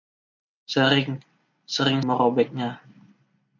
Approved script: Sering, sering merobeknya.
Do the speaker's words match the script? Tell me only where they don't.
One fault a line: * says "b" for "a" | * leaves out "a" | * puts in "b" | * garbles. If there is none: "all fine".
all fine